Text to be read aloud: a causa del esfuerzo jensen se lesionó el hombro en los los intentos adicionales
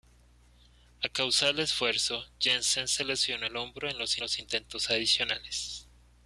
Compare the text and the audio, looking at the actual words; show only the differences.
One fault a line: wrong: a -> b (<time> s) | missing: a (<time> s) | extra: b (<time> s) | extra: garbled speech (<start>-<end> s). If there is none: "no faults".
no faults